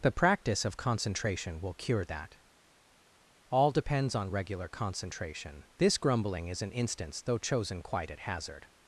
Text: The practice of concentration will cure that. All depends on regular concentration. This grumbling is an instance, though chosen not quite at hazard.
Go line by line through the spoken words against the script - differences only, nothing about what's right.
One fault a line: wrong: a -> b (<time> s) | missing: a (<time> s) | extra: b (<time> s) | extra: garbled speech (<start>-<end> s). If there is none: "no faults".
missing: not (7.8 s)